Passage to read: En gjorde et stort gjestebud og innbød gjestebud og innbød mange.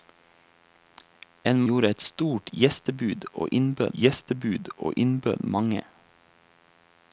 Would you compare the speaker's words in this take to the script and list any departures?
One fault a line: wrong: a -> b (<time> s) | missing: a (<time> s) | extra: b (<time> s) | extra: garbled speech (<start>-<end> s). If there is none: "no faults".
no faults